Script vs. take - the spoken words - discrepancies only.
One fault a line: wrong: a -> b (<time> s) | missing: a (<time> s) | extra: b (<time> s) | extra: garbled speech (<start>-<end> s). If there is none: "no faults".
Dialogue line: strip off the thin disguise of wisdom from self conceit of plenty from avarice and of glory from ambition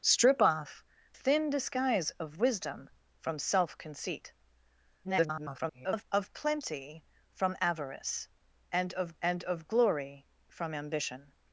missing: the (0.8 s)
extra: garbled speech (5.0-6.1 s)
extra: and of (9.2 s)